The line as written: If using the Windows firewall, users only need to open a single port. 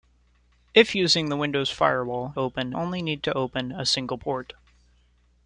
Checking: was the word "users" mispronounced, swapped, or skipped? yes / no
yes